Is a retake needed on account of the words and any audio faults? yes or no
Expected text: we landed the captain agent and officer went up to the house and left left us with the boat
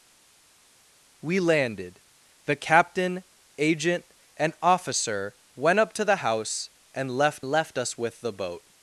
no